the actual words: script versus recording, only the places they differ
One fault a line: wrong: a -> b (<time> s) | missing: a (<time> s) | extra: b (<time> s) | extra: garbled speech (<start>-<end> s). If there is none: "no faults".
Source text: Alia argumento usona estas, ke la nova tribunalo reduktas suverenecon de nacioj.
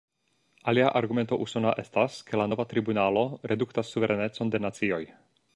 no faults